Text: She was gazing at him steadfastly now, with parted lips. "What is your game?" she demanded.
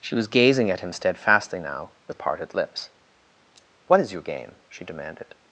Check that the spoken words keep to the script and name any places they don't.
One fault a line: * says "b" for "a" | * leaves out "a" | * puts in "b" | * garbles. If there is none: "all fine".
all fine